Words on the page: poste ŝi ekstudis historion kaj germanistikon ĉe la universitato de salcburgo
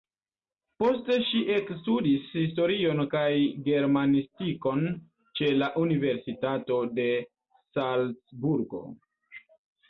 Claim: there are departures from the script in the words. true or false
false